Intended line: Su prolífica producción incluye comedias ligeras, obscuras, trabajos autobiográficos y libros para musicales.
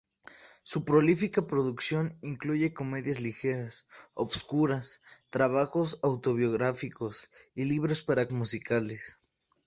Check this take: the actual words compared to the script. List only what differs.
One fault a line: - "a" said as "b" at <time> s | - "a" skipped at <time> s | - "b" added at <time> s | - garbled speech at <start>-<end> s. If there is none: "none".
none